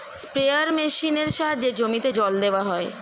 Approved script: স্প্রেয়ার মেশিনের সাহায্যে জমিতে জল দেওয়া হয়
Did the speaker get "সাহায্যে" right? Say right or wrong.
right